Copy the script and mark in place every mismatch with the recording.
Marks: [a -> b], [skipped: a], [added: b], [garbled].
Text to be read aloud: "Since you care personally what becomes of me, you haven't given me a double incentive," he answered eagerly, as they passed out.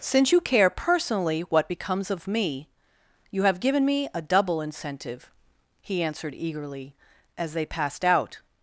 "Since you care personally what becomes of me, you [haven't -> have] given me a double incentive," he answered eagerly, as they passed out.